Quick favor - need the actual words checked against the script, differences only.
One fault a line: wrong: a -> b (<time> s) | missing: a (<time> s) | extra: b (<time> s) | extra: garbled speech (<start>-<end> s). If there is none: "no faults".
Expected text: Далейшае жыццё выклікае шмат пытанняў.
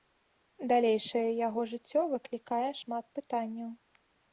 extra: яго (1.5 s)